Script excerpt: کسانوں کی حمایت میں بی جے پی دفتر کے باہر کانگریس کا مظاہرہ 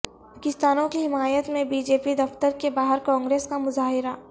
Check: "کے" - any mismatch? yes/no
no